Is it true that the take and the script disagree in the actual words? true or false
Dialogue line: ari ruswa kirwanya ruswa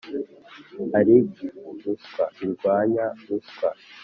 false